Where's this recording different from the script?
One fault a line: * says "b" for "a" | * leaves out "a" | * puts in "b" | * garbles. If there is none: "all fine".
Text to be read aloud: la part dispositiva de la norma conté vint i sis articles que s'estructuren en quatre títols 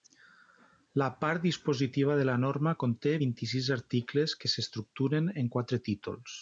all fine